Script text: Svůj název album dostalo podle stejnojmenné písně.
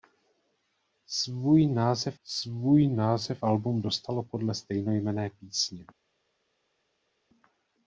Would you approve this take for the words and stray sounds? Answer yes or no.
no